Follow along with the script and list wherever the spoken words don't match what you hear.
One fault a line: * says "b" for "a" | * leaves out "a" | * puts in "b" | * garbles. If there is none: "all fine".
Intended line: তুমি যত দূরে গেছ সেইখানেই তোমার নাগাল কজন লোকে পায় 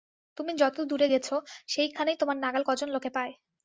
all fine